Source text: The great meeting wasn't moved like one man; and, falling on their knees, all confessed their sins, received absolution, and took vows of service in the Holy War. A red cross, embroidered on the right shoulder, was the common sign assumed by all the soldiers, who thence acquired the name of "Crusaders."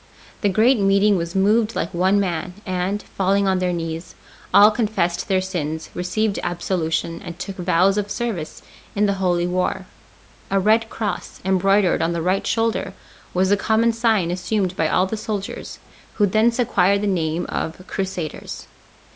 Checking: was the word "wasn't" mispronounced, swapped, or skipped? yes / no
yes